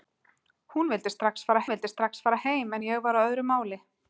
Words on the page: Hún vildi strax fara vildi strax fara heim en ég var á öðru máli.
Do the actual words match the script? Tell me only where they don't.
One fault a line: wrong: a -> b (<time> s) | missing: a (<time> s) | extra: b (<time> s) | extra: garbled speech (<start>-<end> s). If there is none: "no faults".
no faults